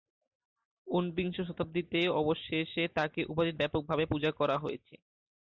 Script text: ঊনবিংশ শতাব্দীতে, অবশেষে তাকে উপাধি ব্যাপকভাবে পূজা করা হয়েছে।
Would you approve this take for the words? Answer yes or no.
yes